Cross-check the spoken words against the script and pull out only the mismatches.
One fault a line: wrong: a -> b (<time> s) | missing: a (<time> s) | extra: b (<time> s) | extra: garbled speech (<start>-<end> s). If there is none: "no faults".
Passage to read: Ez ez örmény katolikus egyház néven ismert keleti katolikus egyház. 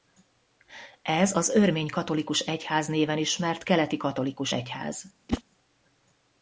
wrong: ez -> az (1.4 s)